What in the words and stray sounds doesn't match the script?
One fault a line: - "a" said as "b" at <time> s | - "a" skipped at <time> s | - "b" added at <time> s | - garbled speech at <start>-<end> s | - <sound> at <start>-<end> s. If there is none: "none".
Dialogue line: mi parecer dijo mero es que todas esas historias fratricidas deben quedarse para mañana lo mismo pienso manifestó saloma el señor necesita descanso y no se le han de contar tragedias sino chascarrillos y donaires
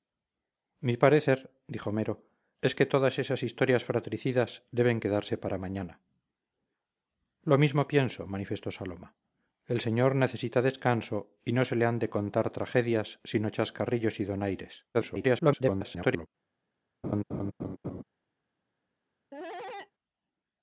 - garbled speech at 14.9-16.3 s
- laugh at 17.0-18.0 s
- cough at 19.3-19.9 s